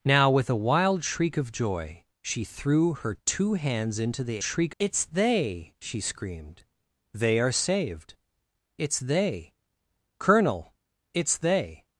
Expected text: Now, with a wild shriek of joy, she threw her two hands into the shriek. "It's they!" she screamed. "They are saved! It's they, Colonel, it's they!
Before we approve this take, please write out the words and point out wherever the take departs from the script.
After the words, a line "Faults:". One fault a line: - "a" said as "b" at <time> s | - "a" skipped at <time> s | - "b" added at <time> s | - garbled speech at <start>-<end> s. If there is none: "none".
Now, with a wild shriek of joy, she threw her two hands into the shriek. "It's they!" she screamed. "They are saved! It's they, Colonel, it's they!
Faults:
none